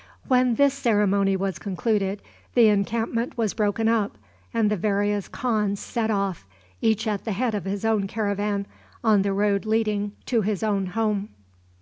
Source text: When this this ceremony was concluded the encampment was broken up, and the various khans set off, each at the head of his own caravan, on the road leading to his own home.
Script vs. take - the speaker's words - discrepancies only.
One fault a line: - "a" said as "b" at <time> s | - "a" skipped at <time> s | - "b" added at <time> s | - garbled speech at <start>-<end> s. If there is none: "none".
- "this" skipped at 0.7 s